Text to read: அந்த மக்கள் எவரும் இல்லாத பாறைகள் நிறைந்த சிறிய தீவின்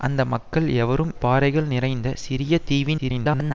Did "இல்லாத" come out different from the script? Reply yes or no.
yes